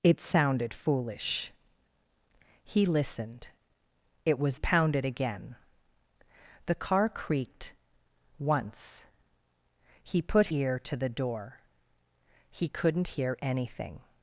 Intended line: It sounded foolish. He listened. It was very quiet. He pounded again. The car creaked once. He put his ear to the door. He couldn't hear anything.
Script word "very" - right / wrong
wrong